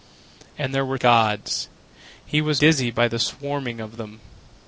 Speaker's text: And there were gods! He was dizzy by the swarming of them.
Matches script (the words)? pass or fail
pass